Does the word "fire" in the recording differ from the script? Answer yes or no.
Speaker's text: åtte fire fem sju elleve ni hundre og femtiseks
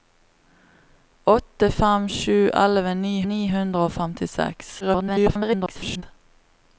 yes